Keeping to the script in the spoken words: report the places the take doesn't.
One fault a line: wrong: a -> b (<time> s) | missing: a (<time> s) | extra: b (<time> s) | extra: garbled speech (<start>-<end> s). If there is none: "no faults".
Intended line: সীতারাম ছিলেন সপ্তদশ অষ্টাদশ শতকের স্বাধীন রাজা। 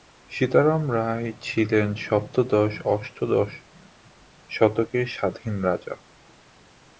extra: রায় (0.9 s)